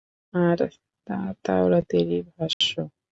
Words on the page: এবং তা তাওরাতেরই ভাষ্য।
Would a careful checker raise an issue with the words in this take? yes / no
yes